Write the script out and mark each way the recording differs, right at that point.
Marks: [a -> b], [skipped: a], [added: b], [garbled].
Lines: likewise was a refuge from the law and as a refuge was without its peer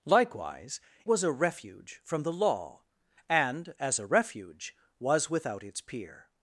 likewise was a refuge from the law and as a refuge was without its peer